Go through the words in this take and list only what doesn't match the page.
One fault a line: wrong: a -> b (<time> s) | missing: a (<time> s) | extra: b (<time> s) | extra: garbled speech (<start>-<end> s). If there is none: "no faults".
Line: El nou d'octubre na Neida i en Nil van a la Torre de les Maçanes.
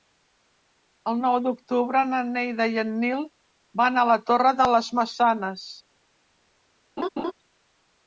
no faults